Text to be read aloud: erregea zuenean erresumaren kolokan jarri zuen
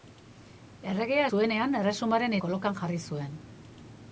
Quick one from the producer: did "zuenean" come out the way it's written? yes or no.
yes